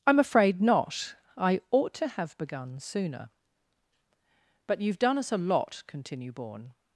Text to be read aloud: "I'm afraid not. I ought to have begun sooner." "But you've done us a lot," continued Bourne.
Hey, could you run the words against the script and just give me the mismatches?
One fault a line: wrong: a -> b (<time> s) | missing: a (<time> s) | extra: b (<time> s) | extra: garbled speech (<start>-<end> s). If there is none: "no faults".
wrong: continued -> continue (5.9 s)